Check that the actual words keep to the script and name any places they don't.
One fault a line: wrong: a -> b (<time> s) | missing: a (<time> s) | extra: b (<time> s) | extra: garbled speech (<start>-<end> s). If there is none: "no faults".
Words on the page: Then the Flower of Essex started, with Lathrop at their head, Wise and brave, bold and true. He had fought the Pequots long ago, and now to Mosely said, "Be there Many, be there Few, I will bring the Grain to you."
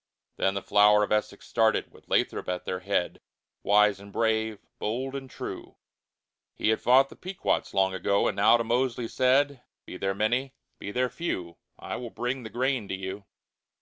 no faults